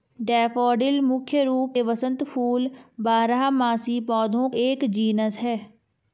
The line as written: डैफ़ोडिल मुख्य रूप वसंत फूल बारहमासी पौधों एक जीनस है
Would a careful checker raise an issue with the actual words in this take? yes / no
no